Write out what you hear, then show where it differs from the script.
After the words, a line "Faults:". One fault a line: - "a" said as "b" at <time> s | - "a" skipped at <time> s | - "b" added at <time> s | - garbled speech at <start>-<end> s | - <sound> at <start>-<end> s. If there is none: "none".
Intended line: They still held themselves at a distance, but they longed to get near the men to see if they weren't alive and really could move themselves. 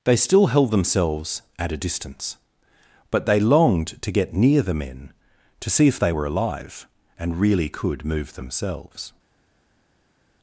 They still held themselves at a distance, but they longed to get near the men to see if they were alive and really could move themselves.
Faults:
- "weren't" said as "were" at 6.1 s